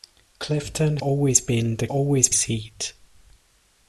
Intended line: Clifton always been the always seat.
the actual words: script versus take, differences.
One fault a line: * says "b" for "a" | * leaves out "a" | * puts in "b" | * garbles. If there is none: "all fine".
all fine